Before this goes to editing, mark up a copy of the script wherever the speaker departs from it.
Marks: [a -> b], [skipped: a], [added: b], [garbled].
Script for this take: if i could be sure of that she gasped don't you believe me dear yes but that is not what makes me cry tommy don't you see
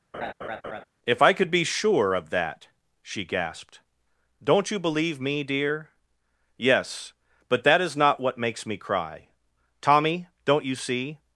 if i could be sure of that she gasped don't you believe me dear yes but that is not what makes me cry tommy don't you see